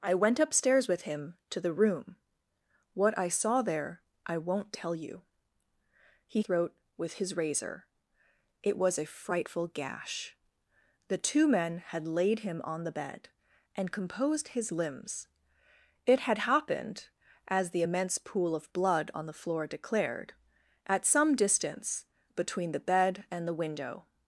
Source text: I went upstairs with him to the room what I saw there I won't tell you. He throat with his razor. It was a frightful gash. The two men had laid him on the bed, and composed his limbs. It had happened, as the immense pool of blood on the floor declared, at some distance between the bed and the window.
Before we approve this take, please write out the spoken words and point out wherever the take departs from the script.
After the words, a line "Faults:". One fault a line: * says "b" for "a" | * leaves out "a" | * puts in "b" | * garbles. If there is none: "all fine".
I went upstairs with him to the room what I saw there I won't tell you. He throat with his razor. It was a frightful gash. The two men had laid him on the bed, and composed his limbs. It had happened, as the immense pool of blood on the floor declared, at some distance between the bed and the window.
Faults:
all fine